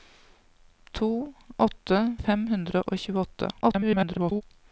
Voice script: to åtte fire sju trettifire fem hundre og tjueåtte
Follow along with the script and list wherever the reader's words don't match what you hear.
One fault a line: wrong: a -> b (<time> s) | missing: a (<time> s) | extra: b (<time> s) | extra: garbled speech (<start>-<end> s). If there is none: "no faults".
missing: fire sju trettifire (2.1 s)
extra: garbled speech (3.6-4.4 s)